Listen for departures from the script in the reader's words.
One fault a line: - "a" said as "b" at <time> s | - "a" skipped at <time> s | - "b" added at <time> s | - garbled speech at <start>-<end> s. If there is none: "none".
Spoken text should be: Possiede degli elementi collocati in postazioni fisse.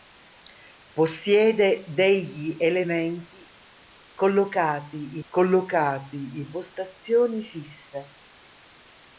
- "collocati" added at 5.3 s